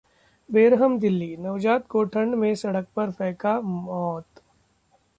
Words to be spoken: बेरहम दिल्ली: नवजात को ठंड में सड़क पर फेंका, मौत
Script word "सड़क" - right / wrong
right